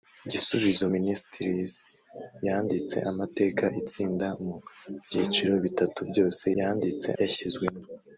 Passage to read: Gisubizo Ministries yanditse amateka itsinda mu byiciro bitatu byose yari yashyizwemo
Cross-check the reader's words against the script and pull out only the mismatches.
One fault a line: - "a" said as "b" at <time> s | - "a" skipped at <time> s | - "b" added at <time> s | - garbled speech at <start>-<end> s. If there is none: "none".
- "yari" said as "yanditse" at 6.6 s